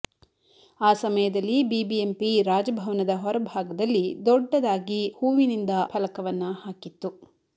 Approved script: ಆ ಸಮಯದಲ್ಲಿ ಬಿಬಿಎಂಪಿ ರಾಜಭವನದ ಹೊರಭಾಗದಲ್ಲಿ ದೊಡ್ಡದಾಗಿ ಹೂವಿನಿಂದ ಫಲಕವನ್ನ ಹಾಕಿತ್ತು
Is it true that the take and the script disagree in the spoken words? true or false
false